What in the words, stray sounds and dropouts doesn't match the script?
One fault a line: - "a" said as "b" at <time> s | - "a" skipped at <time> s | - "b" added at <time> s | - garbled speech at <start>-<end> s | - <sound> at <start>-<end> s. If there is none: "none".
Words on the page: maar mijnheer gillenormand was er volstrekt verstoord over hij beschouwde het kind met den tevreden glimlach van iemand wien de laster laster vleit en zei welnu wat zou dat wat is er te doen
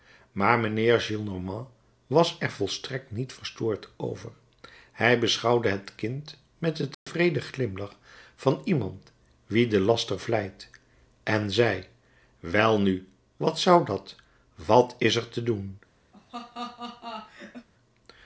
- "niet" added at 3.1 s
- dropout at 6.9-7.1 s
- "laster" skipped at 10.2 s
- laugh at 16.1-17.7 s